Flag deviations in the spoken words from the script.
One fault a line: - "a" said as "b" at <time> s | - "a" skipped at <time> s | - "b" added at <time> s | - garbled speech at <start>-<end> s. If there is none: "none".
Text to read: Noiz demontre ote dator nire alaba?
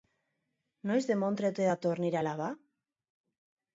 none